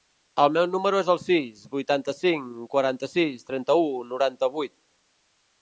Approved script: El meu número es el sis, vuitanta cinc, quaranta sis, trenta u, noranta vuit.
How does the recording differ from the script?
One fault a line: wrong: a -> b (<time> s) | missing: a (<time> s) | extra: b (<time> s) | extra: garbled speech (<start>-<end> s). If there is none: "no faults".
no faults